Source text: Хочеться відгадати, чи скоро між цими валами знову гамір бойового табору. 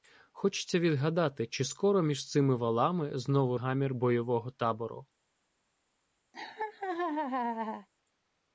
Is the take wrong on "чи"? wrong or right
right